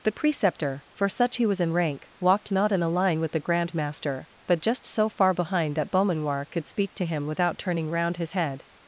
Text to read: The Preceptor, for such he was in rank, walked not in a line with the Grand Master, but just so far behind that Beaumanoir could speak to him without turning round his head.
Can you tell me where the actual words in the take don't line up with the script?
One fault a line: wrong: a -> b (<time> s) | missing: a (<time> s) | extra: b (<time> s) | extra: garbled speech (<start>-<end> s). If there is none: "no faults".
no faults